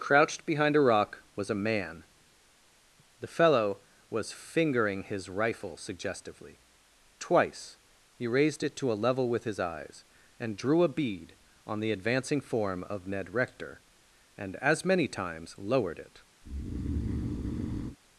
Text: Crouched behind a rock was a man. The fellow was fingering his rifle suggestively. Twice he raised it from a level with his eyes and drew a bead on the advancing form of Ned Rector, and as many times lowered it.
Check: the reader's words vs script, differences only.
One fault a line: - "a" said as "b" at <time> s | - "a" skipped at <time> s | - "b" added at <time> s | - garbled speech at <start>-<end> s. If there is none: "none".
- "from" said as "to" at 8.8 s